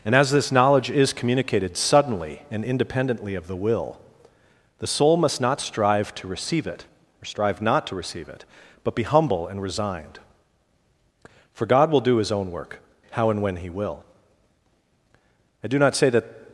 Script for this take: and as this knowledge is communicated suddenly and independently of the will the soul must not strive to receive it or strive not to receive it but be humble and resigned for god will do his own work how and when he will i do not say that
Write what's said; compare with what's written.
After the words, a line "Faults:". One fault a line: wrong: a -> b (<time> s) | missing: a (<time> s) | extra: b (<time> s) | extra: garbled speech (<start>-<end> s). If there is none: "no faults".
and as this knowledge is communicated suddenly and independently of the will the soul must not strive to receive it or strive not to receive it but be humble and resigned for god will do his own work how and when he will i do not say that
Faults:
no faults